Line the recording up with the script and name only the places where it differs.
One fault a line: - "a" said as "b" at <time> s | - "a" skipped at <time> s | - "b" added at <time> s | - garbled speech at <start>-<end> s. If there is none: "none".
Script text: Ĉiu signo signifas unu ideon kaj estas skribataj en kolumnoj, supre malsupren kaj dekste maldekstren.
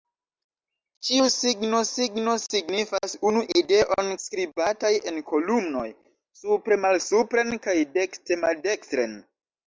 - "signo" added at 1.9 s
- "kaj estas" skipped at 4.1 s